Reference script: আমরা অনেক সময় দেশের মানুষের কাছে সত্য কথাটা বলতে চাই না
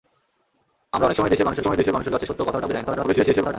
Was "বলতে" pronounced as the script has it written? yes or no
no